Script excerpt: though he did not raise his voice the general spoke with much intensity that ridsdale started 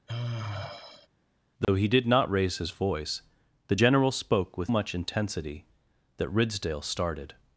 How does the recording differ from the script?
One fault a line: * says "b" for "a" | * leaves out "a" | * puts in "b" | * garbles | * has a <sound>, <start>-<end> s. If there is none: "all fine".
* has a sigh, 0.1-1.1 s
* has a dropout, 1.6-1.7 s